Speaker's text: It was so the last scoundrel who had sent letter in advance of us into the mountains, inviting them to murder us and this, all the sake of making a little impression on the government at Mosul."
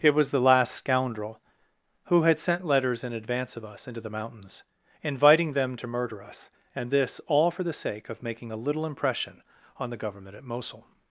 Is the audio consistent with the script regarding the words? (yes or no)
no